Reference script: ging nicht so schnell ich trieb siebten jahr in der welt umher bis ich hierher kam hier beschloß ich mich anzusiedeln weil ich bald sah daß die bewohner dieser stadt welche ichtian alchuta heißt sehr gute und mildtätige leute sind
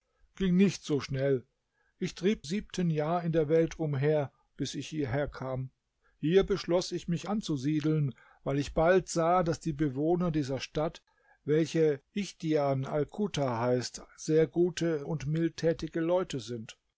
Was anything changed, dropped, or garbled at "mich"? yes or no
no